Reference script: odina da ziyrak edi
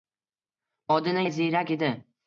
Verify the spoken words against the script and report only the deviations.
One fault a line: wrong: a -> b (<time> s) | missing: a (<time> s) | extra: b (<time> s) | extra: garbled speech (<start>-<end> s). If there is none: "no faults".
no faults